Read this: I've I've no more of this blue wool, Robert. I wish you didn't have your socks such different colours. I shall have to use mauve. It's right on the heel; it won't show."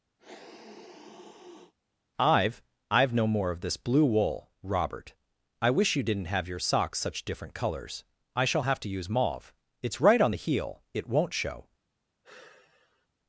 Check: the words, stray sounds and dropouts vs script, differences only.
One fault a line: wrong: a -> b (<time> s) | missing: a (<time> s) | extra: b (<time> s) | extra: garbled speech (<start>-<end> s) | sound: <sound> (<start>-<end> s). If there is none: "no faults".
sound: sniff (0.2-1.7 s)
sound: sigh (12.2-13.1 s)